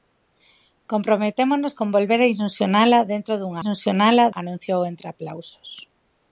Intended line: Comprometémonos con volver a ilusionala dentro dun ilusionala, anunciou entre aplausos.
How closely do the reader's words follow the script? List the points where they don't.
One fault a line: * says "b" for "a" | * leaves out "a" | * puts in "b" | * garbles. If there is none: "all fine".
all fine